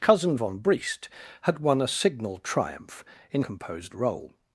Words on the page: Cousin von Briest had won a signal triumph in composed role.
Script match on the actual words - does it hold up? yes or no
yes